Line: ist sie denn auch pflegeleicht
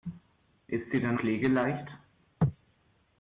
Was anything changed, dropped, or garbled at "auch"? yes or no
yes